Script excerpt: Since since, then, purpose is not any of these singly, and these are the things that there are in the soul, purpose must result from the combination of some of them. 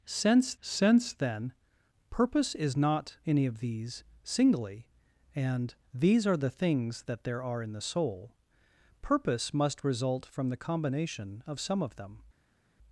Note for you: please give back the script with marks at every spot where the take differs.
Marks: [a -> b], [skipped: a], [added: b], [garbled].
Since since, then, purpose is not any of these singly, and these are the things that there are in the soul, purpose must result from the combination of some of them.